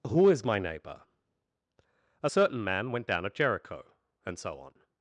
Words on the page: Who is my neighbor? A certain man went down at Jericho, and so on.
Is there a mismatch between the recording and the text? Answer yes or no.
no